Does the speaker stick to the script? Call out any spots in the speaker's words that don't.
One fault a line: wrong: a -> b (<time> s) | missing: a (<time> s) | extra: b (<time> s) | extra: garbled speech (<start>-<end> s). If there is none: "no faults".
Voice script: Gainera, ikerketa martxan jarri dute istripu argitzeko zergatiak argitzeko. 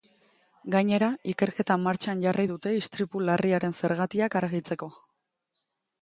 wrong: argitzeko -> larriaren (3.3 s)